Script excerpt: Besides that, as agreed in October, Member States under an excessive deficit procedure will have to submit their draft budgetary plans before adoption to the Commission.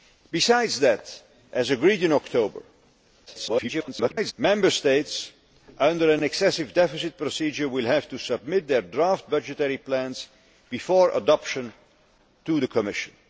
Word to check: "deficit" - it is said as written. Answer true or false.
true